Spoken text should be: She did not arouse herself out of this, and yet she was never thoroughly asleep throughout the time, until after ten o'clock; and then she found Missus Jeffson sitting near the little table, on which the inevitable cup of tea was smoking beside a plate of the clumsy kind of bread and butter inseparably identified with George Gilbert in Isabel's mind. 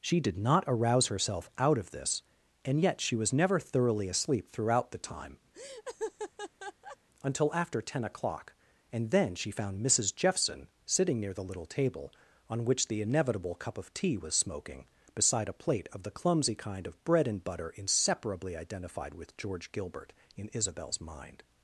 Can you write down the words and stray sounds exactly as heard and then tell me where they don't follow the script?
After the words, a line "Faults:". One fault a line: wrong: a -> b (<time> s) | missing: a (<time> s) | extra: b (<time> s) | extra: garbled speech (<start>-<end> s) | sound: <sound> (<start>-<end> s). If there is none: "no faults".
She did not arouse herself out of this, and yet she was never thoroughly asleep throughout the time, until after ten o'clock; and then she found Missus Jeffson sitting near the little table, on which the inevitable cup of tea was smoking beside a plate of the clumsy kind of bread and butter inseparably identified with George Gilbert in Isabel's mind.
Faults:
sound: laugh (5.5-7.0 s)